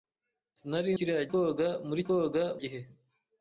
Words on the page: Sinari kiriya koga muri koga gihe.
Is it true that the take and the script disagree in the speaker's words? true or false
false